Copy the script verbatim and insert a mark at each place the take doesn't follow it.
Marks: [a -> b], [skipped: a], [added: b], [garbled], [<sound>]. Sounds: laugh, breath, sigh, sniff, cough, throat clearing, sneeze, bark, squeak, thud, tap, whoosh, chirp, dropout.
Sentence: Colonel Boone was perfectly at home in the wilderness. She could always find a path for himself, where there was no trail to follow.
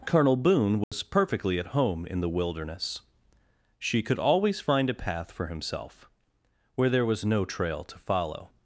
Colonel Boone was [dropout] perfectly at home in the wilderness. She could always find a path for himself, where there was no trail to follow.